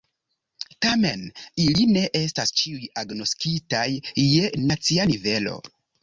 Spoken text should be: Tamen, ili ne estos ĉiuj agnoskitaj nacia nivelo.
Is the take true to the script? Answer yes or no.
no